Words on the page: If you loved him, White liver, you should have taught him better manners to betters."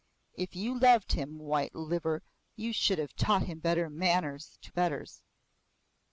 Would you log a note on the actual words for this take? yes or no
no